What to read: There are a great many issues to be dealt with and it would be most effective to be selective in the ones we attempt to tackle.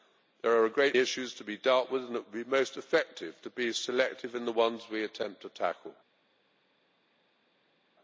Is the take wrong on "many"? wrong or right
wrong